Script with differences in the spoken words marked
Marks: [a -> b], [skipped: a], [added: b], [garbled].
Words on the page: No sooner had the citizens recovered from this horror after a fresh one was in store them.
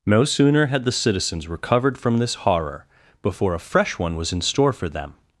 No sooner had the citizens recovered from this horror [after -> before] a fresh one was in store [added: for] them.